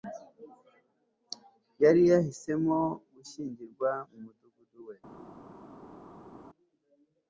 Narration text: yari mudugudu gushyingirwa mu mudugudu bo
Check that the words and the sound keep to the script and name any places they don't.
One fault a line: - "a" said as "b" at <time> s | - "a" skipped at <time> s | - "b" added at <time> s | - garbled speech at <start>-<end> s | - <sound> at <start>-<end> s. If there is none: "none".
- "mudugudu" said as "yahisemo" at 2.1 s
- "bo" said as "we" at 4.9 s